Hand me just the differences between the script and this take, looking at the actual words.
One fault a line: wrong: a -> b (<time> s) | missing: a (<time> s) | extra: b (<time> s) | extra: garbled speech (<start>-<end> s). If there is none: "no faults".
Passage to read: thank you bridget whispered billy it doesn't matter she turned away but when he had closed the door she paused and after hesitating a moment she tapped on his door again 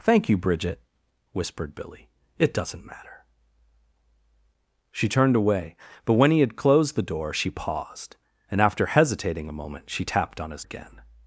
missing: door (10.6 s)